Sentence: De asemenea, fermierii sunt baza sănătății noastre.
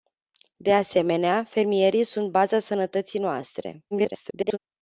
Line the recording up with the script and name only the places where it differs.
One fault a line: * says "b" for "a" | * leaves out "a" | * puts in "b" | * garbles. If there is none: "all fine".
* garbles